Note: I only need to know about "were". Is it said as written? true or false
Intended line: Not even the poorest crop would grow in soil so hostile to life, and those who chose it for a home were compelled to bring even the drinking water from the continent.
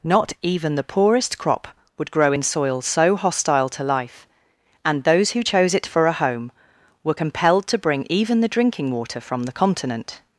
true